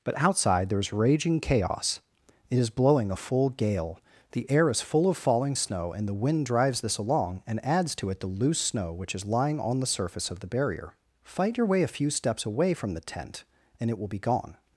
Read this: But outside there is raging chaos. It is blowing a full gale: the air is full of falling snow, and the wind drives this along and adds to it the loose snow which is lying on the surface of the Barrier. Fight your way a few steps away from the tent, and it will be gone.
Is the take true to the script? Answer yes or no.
yes